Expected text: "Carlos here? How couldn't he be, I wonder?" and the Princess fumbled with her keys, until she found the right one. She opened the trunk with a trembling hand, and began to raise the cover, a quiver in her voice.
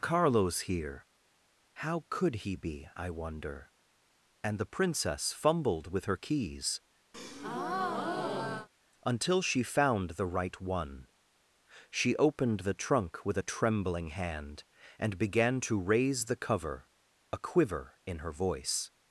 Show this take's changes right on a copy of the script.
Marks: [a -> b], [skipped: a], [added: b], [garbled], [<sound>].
"Carlos here? How [couldn't -> could] he be, I wonder?" and the Princess fumbled with her keys, [breath] until she found the right one. She opened the trunk with a trembling hand, and began to raise the cover, a quiver in her voice.